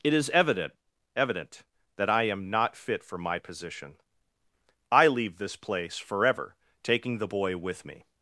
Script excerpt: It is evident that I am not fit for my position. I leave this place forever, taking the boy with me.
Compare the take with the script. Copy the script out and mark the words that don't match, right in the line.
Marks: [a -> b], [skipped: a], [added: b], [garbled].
It is evident [added: evident] that I am not fit for my position. I leave this place forever, taking the boy with me.